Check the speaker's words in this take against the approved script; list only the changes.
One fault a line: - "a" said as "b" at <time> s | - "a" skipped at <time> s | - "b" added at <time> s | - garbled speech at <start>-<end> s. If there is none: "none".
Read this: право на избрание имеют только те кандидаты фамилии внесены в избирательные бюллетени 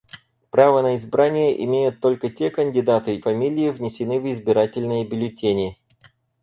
none